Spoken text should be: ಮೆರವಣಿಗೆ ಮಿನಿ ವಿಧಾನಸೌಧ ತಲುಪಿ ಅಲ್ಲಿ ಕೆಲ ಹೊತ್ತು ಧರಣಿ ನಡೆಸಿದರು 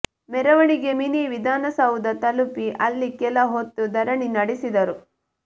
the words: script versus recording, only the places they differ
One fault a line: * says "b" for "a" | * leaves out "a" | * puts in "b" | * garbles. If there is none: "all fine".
all fine